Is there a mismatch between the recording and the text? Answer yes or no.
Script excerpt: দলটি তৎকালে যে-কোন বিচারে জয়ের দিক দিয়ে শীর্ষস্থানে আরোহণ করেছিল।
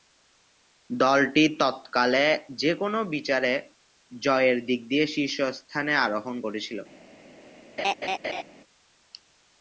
no